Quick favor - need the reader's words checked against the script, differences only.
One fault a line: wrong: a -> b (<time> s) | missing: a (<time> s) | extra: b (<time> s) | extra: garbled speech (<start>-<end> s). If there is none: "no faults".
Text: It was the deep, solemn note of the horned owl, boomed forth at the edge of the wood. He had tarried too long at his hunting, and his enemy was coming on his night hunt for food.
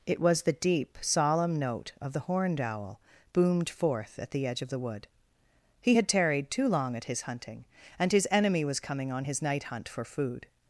no faults